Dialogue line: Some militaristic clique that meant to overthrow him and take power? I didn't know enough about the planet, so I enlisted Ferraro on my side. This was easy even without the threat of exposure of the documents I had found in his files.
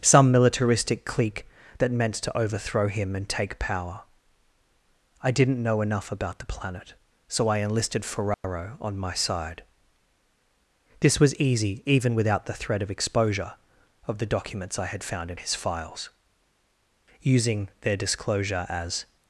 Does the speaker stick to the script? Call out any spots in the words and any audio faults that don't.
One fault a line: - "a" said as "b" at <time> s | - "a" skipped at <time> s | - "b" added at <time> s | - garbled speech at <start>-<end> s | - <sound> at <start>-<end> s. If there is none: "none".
- dropout at 8.3-8.4 s
- "Using their disclosure as" added at 17.2 s